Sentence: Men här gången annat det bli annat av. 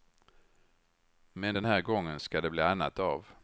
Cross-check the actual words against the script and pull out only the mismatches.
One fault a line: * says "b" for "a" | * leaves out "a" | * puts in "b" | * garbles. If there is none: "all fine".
* puts in "den"
* says "ska" for "annat"